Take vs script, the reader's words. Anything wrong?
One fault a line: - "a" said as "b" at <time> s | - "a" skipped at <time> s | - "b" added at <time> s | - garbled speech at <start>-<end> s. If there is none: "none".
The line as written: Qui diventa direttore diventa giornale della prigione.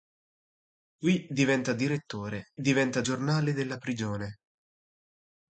none